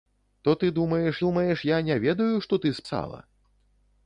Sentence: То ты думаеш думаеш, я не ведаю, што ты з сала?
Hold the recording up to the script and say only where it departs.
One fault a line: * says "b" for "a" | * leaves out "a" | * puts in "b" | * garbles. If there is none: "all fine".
all fine